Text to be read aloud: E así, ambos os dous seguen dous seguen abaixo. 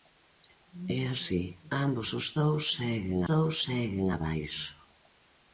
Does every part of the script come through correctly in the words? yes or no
yes